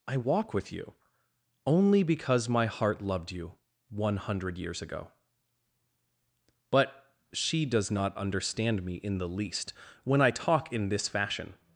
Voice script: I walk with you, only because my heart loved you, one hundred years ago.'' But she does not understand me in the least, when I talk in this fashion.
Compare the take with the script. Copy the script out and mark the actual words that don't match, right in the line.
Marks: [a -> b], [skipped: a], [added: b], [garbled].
I walk with you, only because my heart loved you, one hundred years ago.'' But she does not understand me in the least, when I talk in this fashion.